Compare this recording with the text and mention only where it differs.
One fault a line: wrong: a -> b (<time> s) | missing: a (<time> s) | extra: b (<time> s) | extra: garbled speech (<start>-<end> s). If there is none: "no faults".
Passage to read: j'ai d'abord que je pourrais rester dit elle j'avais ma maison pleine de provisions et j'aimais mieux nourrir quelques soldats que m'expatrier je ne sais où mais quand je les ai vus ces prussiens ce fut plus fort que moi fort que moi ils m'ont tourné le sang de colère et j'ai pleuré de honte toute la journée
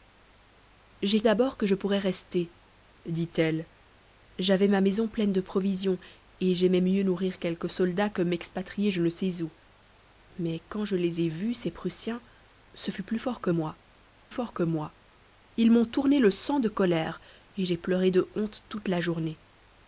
no faults